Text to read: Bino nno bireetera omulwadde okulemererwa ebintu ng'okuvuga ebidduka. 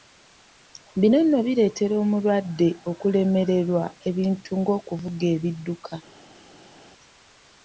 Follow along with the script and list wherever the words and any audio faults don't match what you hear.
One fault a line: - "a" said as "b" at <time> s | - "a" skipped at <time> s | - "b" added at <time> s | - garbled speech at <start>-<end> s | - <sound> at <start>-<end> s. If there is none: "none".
none